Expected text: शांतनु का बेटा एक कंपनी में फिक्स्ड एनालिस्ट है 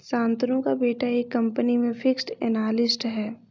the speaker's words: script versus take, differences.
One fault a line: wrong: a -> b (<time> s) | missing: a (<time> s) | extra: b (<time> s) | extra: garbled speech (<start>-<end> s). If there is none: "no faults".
no faults